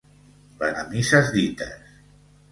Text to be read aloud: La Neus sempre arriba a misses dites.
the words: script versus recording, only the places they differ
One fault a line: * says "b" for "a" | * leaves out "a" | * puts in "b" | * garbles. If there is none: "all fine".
* leaves out "Neus sempre arriba"